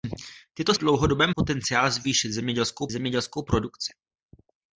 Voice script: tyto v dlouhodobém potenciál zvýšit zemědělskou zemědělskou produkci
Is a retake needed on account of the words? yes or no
no